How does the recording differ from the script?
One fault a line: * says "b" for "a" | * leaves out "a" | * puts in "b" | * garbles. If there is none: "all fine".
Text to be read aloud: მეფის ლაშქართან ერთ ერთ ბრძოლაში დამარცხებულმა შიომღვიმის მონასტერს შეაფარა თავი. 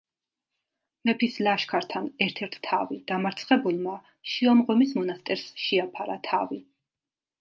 * says "თავი" for "ბრძოლაში"